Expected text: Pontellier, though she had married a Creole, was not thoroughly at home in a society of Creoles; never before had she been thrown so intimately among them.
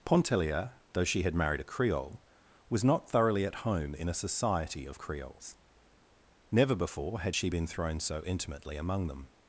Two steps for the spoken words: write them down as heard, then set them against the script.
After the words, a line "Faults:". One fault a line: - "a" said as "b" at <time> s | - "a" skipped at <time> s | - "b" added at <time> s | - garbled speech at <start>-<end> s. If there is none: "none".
Pontellier, though she had married a Creole, was not thoroughly at home in a society of Creoles; never before had she been thrown so intimately among them.
Faults:
none